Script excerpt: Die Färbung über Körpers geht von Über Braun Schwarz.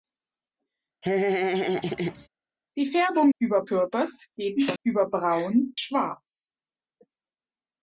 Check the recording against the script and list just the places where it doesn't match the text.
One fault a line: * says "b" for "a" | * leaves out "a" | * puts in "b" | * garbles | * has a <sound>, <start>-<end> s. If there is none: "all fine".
* has a laugh, 1.0-2.3 s